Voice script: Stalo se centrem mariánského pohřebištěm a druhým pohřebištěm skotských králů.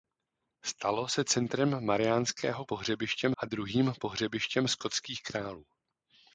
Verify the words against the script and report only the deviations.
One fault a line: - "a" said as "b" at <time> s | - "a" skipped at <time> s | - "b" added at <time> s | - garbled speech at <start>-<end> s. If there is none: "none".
none